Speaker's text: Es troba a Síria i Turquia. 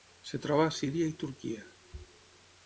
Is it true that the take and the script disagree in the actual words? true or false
false